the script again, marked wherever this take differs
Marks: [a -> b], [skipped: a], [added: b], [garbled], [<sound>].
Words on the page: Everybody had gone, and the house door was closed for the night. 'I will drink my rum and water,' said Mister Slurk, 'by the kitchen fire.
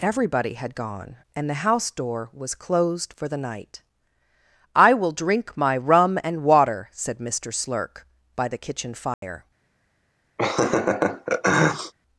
Everybody had gone, and the house door was closed for the night. 'I will drink my rum and water,' said Mister Slurk, 'by the kitchen fire. [dropout] [laugh]